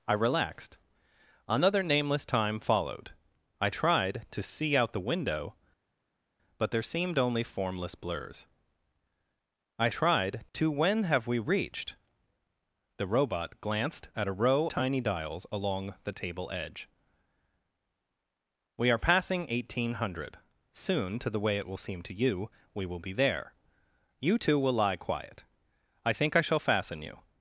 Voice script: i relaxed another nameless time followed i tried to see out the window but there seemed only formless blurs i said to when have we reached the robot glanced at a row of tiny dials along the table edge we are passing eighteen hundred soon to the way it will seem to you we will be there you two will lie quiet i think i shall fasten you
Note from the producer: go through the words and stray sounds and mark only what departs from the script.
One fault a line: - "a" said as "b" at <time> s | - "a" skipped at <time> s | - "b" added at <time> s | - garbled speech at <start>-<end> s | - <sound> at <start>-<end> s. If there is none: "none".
- "said" said as "tried" at 9.9 s
- "of" skipped at 14.7 s